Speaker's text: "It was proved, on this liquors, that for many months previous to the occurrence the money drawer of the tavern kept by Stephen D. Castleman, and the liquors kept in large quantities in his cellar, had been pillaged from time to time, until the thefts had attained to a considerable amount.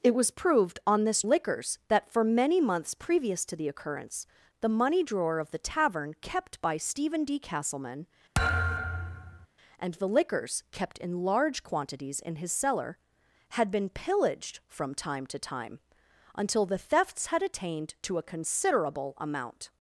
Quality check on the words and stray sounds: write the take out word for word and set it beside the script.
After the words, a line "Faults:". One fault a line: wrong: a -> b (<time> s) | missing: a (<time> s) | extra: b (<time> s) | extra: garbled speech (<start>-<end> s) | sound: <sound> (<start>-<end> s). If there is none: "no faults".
"It was proved, on this liquors, that for many months previous to the occurrence the money drawer of the tavern kept by Stephen D. Castleman, and the liquors kept in large quantities in his cellar, had been pillaged from time to time, until the thefts had attained to a considerable amount.
Faults:
sound: thud (8.3-9.5 s)